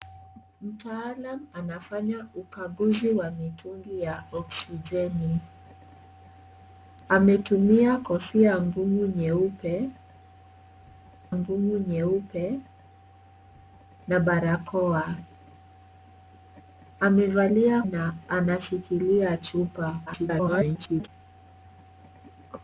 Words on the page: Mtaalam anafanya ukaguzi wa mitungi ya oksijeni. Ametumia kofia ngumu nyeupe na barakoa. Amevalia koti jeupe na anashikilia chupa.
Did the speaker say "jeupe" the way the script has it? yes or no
no